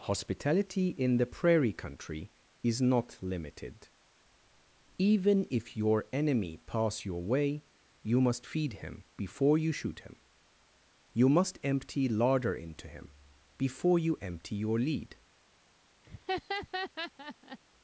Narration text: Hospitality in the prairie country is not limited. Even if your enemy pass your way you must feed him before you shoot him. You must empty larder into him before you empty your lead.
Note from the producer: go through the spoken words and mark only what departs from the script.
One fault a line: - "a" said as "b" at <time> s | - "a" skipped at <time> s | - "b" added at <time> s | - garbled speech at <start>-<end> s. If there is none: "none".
none